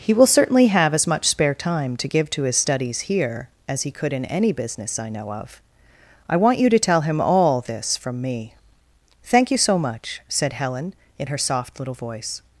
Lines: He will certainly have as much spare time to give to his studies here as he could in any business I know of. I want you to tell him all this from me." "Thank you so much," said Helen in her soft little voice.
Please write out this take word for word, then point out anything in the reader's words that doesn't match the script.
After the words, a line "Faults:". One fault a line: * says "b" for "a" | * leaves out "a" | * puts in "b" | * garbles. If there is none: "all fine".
He will certainly have as much spare time to give to his studies here as he could in any business I know of. I want you to tell him all this from me." "Thank you so much," said Helen in her soft little voice.
Faults:
all fine